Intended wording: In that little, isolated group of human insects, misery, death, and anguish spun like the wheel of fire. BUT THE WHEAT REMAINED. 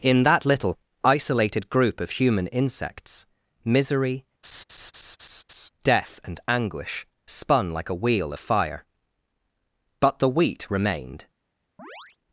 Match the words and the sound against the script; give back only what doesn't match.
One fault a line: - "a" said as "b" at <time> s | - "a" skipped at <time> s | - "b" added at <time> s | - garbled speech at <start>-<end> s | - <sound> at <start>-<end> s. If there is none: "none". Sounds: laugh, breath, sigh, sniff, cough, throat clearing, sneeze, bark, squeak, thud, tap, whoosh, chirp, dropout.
- laugh at 4.4-5.7 s
- "the" said as "a" at 7.9 s
- chirp at 11.8-12.2 s